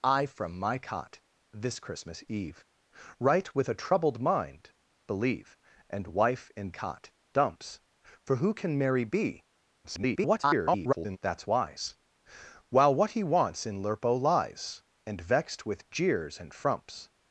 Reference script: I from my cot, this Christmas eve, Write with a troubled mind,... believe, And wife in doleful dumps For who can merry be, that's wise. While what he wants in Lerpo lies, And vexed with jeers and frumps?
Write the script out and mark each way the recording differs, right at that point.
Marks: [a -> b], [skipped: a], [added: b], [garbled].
I from my cot, this Christmas eve, Write with a troubled mind,... believe, And wife in [doleful -> cot] dumps For who can merry be, [garbled] that's wise. While what he wants in Lerpo lies, And vexed with jeers and frumps?